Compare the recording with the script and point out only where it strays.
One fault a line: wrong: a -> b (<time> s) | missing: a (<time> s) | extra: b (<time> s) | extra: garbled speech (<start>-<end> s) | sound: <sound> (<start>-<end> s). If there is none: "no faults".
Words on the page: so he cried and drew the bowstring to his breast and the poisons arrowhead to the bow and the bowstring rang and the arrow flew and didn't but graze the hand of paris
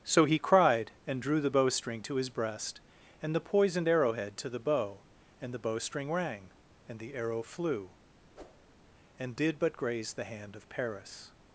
wrong: poisons -> poisoned (3.4 s)
sound: whoosh (8.3-8.7 s)
wrong: didn't -> did (9.4 s)